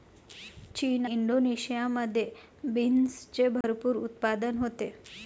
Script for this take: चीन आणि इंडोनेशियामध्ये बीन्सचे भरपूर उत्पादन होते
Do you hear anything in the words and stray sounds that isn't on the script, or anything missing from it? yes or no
yes